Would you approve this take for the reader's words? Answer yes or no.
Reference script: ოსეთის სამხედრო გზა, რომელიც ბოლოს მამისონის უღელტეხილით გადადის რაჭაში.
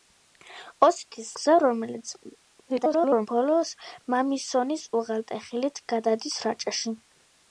no